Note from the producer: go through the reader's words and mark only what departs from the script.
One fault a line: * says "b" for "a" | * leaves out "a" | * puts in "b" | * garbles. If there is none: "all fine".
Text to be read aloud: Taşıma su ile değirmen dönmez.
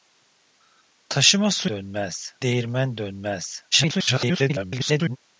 * says "dönmez" for "ile"
* garbles